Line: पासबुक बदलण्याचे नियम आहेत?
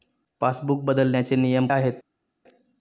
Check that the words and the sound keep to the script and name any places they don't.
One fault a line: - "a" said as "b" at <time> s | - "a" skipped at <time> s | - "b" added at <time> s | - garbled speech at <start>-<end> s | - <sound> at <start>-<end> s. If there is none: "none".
none